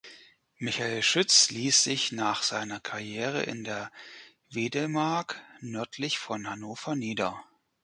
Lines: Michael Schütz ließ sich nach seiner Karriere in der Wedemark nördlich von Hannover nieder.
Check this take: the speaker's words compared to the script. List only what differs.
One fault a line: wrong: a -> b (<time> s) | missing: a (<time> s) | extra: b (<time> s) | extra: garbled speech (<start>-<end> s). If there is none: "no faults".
no faults